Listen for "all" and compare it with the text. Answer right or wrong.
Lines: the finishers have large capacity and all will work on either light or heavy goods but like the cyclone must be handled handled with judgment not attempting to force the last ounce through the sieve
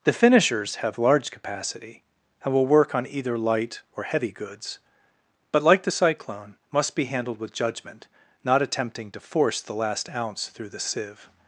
wrong